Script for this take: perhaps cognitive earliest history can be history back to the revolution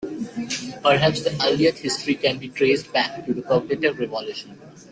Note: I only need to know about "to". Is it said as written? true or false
true